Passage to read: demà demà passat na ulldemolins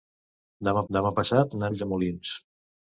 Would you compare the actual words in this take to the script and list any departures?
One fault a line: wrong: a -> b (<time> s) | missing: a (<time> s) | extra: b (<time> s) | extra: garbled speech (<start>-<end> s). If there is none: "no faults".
no faults